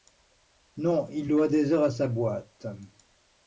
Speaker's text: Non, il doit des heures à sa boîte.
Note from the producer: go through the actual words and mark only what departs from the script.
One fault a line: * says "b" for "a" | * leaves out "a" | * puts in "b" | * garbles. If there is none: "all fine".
all fine